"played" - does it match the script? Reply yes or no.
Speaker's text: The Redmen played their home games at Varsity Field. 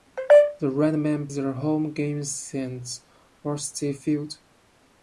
no